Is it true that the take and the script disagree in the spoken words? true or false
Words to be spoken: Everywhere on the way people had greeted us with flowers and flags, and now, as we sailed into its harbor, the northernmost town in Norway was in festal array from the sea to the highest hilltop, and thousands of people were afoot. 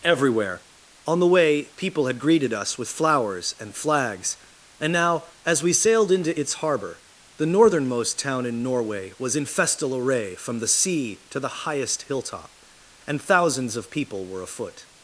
false